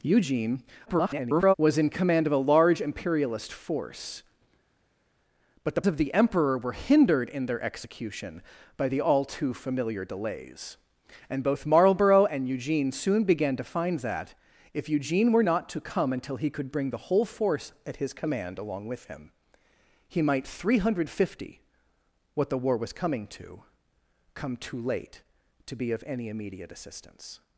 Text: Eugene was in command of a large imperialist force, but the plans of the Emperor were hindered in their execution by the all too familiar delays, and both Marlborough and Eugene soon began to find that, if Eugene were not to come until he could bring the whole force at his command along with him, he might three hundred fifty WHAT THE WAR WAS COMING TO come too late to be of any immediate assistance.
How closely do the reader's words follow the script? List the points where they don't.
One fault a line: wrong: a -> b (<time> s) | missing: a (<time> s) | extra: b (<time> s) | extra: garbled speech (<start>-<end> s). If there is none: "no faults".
extra: garbled speech (0.9-1.5 s)
missing: plans (5.8 s)